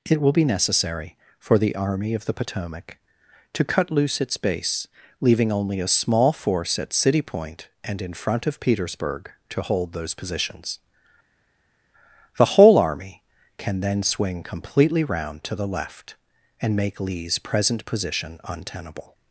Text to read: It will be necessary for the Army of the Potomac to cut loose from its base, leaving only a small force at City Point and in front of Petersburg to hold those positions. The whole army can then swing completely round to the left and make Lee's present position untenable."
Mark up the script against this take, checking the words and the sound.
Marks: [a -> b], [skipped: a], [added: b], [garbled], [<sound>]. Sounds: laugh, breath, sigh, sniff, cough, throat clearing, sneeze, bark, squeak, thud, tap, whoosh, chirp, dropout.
It will be necessary for the Army of the Potomac to cut loose [skipped: from] its base, leaving only a small force at City Point and in front of Petersburg to hold those positions. The whole army can then swing completely round to the left and make Lee's present position untenable."